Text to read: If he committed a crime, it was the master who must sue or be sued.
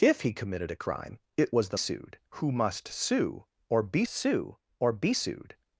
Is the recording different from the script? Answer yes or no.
yes